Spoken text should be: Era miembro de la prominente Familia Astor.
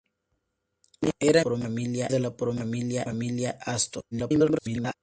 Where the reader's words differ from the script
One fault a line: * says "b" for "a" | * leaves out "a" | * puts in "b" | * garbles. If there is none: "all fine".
* says "prominente" for "miembro"
* garbles